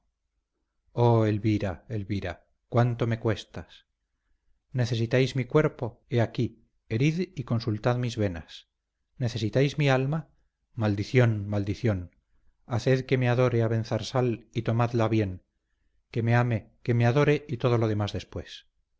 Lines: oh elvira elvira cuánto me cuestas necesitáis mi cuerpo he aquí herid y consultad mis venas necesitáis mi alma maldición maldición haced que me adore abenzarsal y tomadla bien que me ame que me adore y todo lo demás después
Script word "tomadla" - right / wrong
right